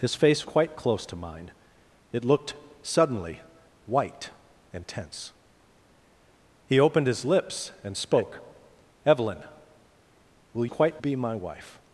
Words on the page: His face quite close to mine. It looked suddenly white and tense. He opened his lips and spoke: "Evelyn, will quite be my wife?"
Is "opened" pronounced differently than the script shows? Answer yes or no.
no